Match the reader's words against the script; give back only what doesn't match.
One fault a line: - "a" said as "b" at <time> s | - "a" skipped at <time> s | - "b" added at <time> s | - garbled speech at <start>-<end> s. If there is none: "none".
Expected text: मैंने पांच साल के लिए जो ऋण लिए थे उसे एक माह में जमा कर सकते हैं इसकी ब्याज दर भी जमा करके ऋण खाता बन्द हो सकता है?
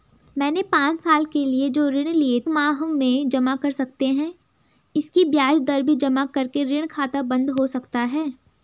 - "थे उसे एक" skipped at 2.4 s